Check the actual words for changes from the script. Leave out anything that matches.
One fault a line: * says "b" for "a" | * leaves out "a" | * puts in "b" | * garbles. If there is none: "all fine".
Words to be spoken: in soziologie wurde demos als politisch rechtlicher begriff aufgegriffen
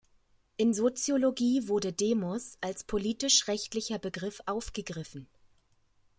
all fine